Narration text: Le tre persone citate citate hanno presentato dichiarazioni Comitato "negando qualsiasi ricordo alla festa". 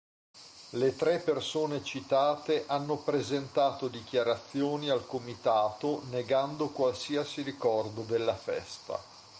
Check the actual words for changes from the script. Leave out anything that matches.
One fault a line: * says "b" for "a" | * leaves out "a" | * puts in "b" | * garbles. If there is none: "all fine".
* leaves out "citate"
* puts in "al"
* says "della" for "alla"